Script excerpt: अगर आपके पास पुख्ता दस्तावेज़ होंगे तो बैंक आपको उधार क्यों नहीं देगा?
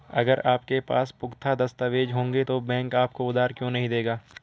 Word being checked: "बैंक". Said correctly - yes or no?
yes